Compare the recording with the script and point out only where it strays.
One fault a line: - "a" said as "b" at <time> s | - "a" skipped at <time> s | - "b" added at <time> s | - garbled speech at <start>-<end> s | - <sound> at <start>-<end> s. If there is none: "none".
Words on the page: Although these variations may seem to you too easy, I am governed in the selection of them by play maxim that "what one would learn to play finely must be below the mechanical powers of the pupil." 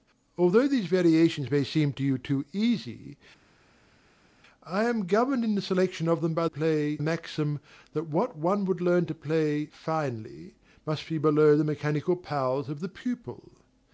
none